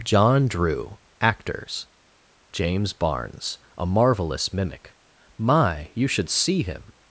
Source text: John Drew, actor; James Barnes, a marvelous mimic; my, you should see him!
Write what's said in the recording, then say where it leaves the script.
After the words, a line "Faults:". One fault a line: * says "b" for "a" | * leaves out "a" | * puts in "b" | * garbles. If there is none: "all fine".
John Drew, actors; James Barnes, a marvelous mimic; my, you should see him!
Faults:
* says "actors" for "actor"